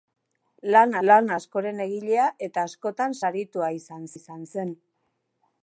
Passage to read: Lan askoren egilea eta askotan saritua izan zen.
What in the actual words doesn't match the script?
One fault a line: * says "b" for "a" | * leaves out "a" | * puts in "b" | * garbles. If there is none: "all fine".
* puts in "lan"
* puts in "izan"